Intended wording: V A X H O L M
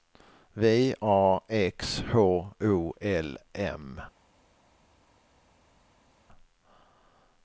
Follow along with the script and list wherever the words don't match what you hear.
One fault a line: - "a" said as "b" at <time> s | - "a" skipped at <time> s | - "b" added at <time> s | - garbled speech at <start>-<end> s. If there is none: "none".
none